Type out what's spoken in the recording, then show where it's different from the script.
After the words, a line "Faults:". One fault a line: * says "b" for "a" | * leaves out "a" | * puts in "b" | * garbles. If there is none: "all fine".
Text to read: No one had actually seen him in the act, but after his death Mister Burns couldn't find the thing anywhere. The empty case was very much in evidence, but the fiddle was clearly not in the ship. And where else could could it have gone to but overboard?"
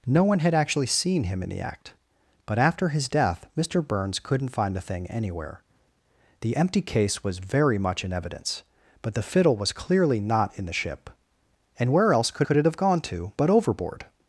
No one had actually seen him in the act, but after his death Mister Burns couldn't find the thing anywhere. The empty case was very much in evidence, but the fiddle was clearly not in the ship. And where else could could it have gone to but overboard?"
Faults:
all fine